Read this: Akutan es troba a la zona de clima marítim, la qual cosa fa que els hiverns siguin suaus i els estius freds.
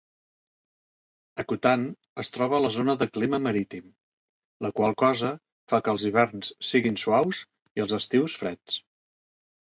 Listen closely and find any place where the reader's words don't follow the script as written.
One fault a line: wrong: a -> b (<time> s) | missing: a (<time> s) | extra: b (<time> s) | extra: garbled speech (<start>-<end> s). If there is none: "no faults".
no faults